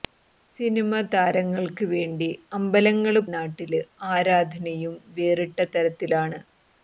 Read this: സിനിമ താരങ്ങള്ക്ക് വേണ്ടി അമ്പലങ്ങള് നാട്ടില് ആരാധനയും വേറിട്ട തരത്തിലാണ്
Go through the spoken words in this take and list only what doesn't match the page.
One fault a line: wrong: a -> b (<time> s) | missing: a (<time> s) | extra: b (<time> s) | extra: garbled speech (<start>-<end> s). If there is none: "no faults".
no faults